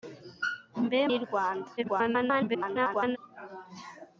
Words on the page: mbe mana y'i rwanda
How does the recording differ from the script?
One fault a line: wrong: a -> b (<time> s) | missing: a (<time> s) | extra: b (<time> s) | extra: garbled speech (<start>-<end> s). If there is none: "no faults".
missing: mana (1.0 s)
extra: garbled speech (1.8-3.2 s)